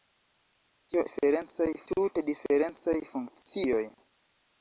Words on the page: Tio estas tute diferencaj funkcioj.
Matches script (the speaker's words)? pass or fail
fail